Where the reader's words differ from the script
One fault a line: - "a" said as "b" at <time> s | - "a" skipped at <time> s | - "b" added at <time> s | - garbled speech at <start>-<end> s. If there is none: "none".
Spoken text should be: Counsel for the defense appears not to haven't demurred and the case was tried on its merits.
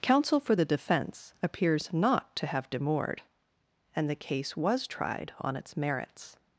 - "haven't" said as "have" at 2.5 s